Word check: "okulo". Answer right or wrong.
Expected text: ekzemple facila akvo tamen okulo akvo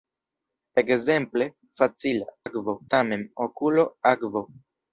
right